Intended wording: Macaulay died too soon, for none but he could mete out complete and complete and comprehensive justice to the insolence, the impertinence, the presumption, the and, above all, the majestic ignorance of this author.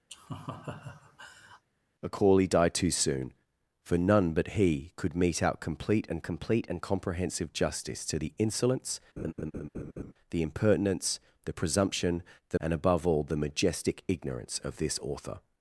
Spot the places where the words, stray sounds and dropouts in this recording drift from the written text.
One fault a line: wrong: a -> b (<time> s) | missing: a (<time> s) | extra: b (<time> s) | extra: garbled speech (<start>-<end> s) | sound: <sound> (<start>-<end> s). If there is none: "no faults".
sound: laugh (0.1-1.6 s)
sound: laugh (9.2-10.1 s)